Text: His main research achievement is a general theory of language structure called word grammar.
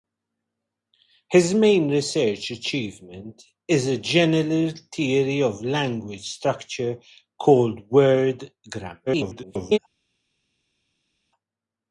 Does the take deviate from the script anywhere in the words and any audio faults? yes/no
yes